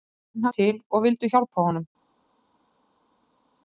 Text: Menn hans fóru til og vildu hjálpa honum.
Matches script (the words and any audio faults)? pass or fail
fail